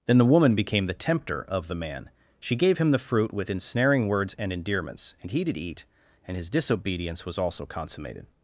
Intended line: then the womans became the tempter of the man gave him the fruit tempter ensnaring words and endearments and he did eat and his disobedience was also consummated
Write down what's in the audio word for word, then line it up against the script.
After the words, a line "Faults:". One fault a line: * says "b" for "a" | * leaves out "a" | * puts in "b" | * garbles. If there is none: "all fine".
then the woman became the tempter of the man she gave him the fruit with ensnaring words and endearments and he did eat and his disobedience was also consummated
Faults:
* says "woman" for "womans"
* puts in "she"
* says "with" for "tempter"